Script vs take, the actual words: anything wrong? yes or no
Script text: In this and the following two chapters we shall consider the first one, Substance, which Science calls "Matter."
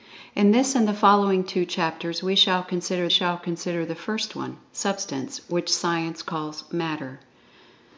yes